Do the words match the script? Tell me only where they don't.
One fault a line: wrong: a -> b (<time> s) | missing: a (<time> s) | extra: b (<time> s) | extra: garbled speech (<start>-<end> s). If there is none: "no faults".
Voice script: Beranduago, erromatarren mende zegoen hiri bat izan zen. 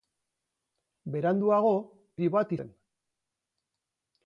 missing: erromatarren mende zegoen (1.7 s)
missing: izan (2.5 s)